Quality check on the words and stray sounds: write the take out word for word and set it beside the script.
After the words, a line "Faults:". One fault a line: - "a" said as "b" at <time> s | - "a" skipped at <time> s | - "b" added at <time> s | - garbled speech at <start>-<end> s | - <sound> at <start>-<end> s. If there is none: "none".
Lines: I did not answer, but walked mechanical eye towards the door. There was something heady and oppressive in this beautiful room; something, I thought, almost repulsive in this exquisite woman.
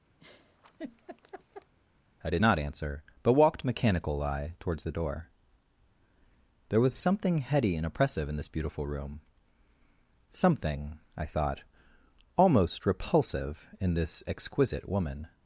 I did not answer, but walked mechanical eye towards the door. There was something heady and oppressive in this beautiful room; something, I thought, almost repulsive in this exquisite woman.
Faults:
- laugh at 0.2-1.7 s